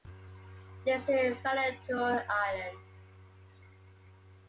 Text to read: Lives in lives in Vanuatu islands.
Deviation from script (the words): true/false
true